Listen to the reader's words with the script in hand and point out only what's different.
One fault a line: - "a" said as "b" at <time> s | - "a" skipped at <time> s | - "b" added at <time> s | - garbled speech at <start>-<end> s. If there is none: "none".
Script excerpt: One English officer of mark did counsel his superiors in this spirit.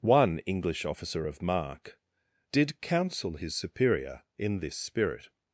- "superiors" said as "superior" at 3.5 s